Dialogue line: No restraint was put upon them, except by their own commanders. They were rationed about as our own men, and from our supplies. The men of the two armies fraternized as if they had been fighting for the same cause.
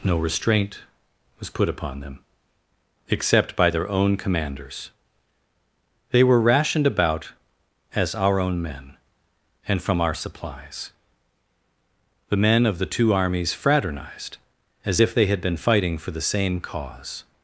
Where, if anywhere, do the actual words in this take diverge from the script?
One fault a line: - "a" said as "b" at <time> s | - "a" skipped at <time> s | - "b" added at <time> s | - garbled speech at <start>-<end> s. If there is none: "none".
none